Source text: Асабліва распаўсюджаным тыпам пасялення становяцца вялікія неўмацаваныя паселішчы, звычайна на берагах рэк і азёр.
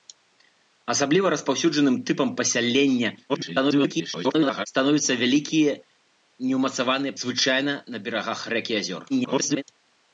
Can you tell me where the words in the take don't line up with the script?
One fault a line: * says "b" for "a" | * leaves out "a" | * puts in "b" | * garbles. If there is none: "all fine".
* garbles
* leaves out "паселішчы"
* garbles